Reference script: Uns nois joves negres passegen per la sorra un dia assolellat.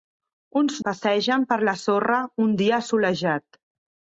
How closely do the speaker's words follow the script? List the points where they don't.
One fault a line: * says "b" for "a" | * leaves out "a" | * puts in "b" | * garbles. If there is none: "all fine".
* leaves out "nois joves negres"